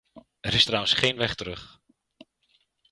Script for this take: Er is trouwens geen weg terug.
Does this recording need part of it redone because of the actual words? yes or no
no